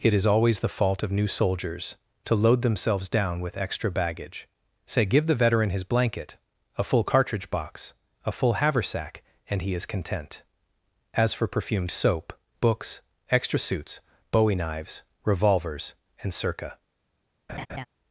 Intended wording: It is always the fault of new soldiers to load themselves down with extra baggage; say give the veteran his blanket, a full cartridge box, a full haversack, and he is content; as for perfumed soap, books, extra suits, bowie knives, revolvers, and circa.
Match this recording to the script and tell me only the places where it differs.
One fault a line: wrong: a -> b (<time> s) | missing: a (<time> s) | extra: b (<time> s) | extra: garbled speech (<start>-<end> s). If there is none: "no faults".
no faults